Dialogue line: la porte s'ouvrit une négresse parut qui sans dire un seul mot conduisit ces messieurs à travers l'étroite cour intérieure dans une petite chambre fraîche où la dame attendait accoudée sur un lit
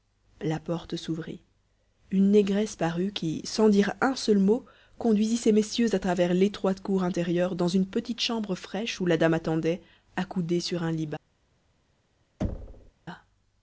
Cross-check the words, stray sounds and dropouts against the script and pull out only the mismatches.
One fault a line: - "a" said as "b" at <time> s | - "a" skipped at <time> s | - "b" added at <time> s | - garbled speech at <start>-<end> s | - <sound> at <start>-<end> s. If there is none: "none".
- thud at 12.4-12.9 s